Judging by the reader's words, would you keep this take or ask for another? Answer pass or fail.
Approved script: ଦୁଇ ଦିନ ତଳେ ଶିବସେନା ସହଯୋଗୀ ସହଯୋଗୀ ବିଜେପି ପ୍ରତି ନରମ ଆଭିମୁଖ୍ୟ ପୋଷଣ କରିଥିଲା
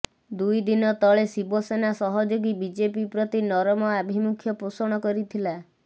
fail